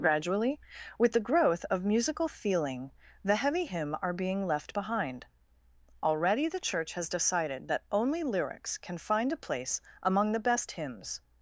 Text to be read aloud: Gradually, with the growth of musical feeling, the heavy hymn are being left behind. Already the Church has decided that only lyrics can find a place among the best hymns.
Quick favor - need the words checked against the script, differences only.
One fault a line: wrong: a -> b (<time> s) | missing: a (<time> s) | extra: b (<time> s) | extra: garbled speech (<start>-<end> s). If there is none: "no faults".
no faults